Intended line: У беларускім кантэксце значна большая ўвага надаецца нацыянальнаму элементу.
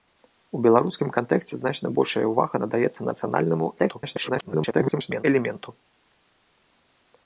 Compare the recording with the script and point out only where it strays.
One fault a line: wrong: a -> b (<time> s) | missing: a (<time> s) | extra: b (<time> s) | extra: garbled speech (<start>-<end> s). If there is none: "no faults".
extra: garbled speech (3.8-5.2 s)